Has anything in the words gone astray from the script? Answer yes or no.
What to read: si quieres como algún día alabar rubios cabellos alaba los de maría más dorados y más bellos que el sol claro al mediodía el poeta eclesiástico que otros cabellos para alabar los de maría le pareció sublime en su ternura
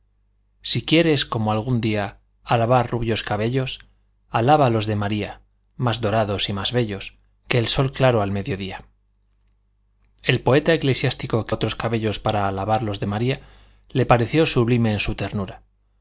no